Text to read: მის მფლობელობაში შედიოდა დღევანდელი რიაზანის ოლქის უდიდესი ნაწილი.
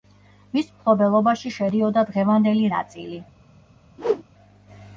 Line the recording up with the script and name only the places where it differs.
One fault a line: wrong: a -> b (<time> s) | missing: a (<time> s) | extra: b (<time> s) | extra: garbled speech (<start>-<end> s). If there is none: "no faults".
missing: რიაზანის ოლქის უდიდესი (2.7 s)